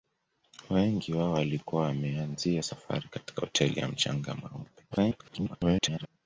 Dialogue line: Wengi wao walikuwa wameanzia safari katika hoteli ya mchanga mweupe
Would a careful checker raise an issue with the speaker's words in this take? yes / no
yes